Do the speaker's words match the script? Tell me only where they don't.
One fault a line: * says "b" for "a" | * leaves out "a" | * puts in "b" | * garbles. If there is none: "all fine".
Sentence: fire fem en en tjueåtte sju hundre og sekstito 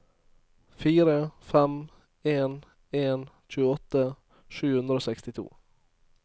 all fine